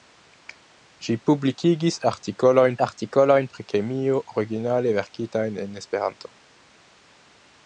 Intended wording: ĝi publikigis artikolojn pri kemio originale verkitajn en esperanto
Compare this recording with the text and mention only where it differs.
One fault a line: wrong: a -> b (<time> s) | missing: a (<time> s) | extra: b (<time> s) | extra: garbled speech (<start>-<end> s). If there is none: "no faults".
extra: artikolojn (2.9 s)